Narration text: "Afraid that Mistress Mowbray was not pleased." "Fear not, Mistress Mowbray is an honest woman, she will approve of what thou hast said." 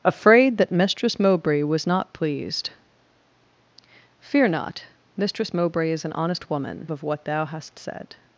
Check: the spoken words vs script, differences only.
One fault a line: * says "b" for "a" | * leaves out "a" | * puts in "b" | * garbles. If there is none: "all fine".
* leaves out "she will approve"